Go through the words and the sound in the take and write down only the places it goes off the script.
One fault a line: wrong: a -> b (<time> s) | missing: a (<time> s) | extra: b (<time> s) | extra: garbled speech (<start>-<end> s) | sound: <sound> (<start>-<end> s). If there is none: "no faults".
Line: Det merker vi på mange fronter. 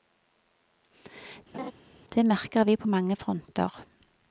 sound: laugh (1.5-1.7 s)